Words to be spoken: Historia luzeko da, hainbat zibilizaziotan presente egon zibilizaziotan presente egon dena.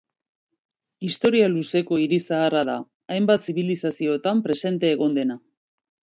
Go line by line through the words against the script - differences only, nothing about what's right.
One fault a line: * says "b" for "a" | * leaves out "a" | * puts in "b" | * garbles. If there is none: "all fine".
* puts in "hiri zaharra"
* leaves out "zibilizaziotan presente egon"